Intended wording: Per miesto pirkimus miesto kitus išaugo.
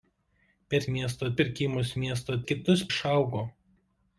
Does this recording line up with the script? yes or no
yes